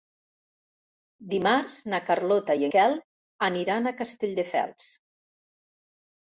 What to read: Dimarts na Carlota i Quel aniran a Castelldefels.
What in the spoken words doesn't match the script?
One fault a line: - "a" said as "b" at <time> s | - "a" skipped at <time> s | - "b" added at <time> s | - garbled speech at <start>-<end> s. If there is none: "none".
none